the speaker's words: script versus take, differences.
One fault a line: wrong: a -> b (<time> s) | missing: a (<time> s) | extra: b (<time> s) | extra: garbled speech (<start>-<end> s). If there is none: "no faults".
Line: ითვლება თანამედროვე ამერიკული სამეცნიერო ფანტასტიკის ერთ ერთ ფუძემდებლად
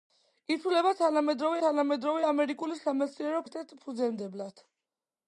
extra: თანამედროვე (1.6 s)
missing: ფანტასტიკის (3.4 s)